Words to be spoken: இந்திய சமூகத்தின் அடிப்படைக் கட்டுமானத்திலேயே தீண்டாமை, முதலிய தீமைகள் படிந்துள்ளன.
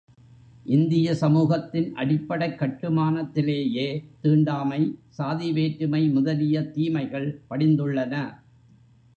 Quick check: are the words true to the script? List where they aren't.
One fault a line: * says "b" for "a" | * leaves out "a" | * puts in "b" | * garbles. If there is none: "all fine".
* puts in "சாதி வேற்றுமை"